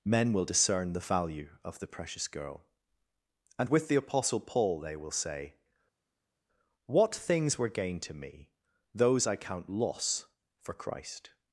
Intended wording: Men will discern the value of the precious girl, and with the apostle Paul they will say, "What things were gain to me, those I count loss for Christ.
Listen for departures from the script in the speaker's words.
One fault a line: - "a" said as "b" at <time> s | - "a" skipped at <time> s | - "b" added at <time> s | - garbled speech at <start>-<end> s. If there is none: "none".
none